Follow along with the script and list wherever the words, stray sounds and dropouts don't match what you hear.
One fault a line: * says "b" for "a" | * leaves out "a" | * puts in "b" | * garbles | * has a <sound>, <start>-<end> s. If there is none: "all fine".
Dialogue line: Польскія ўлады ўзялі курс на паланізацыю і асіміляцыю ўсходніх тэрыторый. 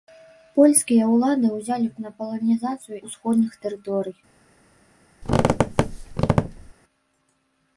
* leaves out "курс"
* leaves out "і асіміляцыю"
* has a squeak, 5.2-6.7 s